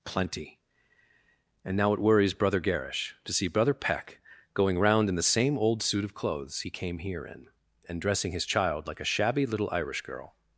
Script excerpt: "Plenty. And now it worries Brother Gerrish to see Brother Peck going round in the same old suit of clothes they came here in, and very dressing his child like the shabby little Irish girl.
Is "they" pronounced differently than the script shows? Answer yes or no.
yes